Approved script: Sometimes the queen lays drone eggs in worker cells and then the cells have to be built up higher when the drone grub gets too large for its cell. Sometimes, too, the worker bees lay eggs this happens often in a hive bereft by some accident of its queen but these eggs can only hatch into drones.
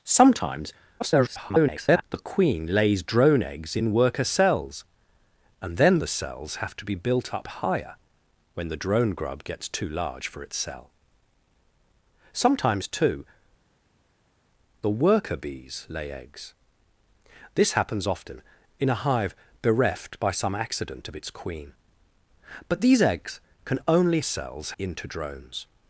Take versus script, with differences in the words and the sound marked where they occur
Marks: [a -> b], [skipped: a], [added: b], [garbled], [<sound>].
Sometimes [garbled] the queen lays drone eggs in worker cells and then the cells have to be built up higher when the drone grub gets too large for its cell. Sometimes, too, the worker bees lay eggs this happens often in a hive bereft by some accident of its queen but these eggs can only [hatch -> cells] into drones.